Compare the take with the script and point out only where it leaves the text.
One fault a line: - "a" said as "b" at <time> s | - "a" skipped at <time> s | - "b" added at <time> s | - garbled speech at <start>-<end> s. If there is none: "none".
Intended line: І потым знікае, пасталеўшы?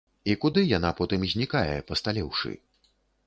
- "куды яна" added at 0.4 s